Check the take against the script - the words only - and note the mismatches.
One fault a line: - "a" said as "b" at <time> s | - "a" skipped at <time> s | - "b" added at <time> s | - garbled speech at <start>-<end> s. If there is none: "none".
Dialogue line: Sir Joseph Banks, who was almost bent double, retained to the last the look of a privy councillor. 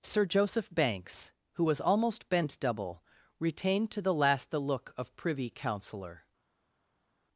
- "a" skipped at 5.1 s